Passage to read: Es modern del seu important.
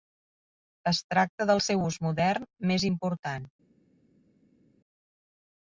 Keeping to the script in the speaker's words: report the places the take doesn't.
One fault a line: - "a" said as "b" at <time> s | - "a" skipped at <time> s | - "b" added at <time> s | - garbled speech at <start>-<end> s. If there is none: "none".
- "modern" said as "tracta" at 1.1 s
- "ús modern més" added at 1.9 s